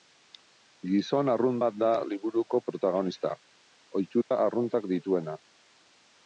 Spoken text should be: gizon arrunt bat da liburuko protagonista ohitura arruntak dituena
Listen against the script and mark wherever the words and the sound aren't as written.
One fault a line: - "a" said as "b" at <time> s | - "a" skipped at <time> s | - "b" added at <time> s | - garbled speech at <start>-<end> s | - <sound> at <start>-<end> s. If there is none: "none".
- dropout at 4.2-4.3 s